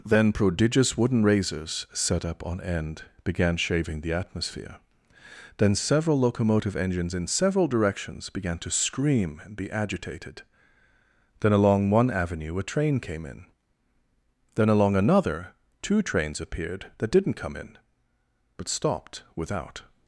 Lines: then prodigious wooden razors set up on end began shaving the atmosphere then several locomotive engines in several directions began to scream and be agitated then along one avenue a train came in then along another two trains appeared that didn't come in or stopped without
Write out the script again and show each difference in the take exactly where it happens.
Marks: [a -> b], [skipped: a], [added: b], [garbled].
then prodigious wooden razors set up on end began shaving the atmosphere then several locomotive engines in several directions began to scream and be agitated then along one avenue a train came in then along another two trains appeared that didn't come in [or -> but] stopped without